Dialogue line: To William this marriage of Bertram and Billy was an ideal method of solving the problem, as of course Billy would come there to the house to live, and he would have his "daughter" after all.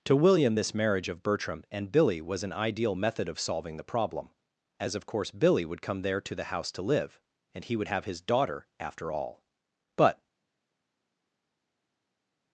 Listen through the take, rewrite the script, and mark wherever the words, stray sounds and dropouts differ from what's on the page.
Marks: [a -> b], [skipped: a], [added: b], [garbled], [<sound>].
To William this marriage of Bertram and Billy was an ideal method of solving the problem, as of course Billy would come there to the house to live, and he would have his "daughter" after all. [added: But]